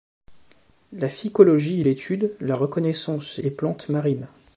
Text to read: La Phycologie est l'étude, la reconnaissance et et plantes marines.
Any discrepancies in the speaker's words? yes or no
no